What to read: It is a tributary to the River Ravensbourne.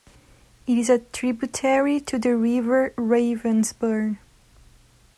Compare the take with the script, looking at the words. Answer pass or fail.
pass